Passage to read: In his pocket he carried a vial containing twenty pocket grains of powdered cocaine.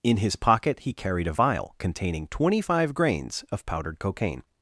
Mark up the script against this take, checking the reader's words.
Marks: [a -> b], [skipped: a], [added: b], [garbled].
In his pocket he carried a vial containing twenty [pocket -> five] grains of powdered cocaine.